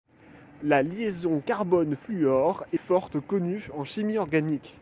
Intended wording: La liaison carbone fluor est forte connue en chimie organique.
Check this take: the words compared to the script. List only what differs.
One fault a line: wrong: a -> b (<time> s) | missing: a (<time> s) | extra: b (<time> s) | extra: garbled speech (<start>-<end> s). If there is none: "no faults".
no faults